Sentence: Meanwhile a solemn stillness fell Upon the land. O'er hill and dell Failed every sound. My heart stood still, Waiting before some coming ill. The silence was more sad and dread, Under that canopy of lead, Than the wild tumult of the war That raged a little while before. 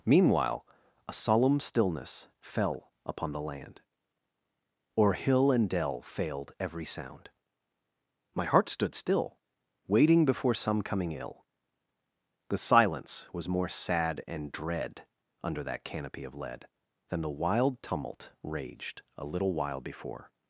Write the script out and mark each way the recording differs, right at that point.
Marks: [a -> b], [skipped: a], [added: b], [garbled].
Meanwhile a solemn stillness fell Upon the land. O'er hill and dell Failed every sound. My heart stood still, Waiting before some coming ill. The silence was more sad and dread, Under that canopy of lead, Than the wild tumult [skipped: of the war That] raged a little while before.